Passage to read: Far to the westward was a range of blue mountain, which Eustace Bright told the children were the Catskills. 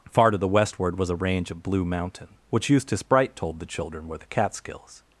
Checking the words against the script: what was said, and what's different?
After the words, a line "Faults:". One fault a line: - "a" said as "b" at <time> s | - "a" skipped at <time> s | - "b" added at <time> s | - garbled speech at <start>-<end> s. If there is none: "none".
Far to the westward was a range of blue mountain, which Eustace Bright told the children were the Catskills.
Faults:
none